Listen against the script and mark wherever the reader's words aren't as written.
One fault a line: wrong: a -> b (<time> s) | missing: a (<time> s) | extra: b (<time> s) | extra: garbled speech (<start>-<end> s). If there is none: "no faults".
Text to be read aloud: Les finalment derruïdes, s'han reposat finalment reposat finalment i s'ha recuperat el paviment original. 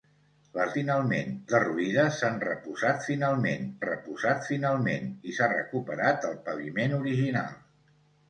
no faults